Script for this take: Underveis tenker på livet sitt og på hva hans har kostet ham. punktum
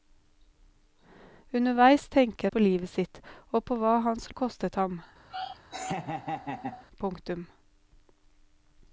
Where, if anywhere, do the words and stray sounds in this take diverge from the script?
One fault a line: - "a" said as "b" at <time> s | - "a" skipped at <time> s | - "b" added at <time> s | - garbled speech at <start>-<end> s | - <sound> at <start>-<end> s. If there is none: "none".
- laugh at 5.3-6.8 s